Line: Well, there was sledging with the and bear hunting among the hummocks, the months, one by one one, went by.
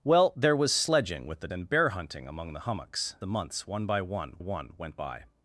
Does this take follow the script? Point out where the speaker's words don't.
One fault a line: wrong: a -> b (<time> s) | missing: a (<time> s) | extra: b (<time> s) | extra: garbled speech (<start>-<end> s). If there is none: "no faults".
no faults